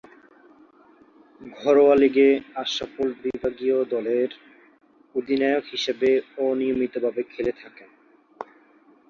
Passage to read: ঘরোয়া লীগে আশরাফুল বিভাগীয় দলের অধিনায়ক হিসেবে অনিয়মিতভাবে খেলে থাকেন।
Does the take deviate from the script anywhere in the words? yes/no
no